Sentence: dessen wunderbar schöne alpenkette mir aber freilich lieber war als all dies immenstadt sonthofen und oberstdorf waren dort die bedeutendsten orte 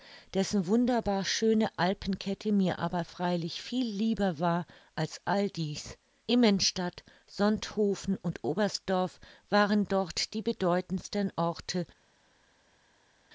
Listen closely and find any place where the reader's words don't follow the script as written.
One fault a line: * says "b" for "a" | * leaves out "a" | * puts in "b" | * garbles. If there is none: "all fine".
* puts in "viel"